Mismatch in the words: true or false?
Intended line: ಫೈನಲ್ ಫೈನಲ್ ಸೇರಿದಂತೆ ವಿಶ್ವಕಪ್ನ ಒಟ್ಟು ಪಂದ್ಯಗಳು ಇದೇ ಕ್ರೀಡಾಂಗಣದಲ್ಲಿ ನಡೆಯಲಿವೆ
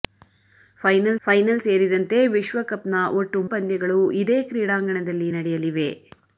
false